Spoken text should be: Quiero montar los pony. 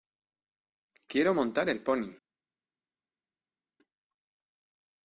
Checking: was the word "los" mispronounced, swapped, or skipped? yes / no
yes